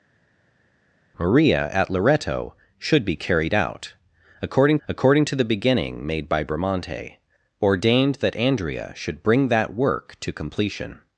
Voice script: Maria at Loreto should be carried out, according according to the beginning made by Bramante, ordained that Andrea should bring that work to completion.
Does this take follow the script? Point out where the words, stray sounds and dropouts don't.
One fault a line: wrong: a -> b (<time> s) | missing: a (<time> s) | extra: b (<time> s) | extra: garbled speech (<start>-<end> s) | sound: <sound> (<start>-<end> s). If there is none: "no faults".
no faults